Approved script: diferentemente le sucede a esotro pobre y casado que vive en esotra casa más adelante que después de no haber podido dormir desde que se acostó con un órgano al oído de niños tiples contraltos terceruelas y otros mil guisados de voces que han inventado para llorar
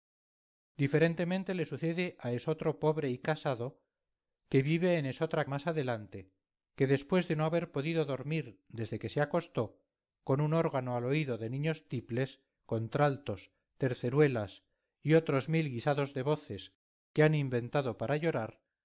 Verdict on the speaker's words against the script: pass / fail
fail